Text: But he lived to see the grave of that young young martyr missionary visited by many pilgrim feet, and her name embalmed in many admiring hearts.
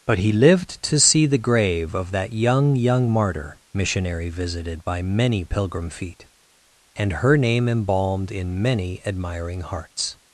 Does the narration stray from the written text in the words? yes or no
no